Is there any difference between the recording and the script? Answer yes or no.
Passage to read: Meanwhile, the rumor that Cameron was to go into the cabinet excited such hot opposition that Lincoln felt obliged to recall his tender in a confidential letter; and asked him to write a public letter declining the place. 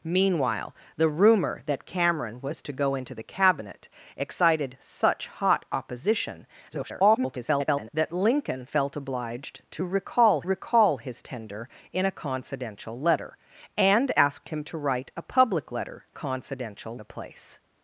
yes